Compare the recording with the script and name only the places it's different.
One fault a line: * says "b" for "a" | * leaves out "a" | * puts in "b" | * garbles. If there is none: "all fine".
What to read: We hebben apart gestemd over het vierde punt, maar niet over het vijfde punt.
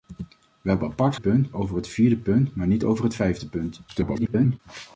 * says "punt" for "gestemd"
* garbles